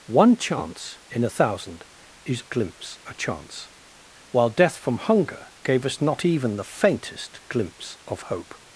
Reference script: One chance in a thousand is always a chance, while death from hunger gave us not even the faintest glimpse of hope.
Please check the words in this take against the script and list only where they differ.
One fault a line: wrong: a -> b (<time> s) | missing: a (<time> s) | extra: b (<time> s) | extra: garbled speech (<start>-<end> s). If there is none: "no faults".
wrong: always -> glimpse (2.5 s)